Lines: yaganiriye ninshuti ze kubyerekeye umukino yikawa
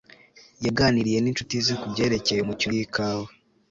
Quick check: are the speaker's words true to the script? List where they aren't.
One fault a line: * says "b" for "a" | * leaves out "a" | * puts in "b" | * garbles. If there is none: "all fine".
all fine